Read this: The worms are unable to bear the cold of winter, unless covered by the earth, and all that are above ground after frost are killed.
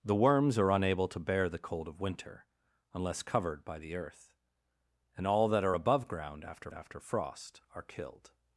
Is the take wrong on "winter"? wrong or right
right